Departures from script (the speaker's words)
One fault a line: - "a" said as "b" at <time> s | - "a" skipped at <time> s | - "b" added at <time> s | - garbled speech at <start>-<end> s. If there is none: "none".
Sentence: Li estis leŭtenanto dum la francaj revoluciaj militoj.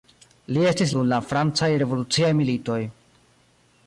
- "leŭtenanto" skipped at 0.9 s